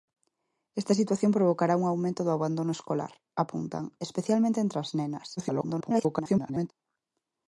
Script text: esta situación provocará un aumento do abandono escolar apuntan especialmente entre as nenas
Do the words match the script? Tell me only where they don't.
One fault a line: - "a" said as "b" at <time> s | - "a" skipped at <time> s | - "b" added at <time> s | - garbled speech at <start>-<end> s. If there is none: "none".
- garbled speech at 5.4-6.7 s